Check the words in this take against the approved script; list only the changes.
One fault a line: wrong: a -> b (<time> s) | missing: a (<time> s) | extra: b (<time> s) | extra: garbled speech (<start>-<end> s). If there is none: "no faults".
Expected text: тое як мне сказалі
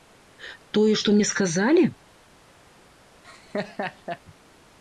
wrong: як -> што (1.0 s)